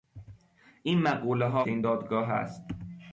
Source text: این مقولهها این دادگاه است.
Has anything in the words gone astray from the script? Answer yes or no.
no